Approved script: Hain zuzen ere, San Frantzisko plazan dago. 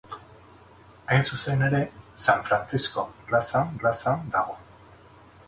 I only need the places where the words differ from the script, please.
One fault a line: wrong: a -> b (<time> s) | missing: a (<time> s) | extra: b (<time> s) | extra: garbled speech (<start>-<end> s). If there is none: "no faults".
extra: plazan (3.8 s)